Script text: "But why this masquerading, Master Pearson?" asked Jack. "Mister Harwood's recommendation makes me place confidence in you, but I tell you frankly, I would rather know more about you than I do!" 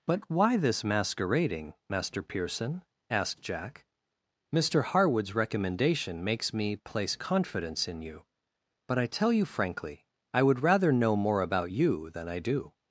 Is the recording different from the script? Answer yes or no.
no